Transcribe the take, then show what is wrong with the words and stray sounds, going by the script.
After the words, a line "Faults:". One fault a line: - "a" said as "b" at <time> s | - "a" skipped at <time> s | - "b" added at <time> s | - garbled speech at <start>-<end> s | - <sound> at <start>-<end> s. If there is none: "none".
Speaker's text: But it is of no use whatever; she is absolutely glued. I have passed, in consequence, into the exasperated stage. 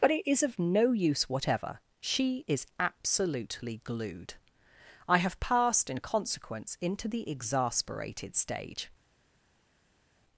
But it is of no use whatever; she is absolutely glued. I have passed, in consequence, into the exasperated stage.
Faults:
none